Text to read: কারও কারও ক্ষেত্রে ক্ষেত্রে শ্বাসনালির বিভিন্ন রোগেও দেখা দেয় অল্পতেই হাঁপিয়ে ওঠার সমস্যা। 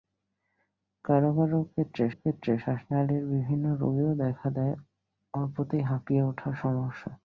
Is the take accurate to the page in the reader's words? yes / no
yes